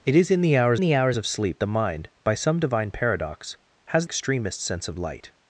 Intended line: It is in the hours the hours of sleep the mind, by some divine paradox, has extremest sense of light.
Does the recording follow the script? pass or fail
pass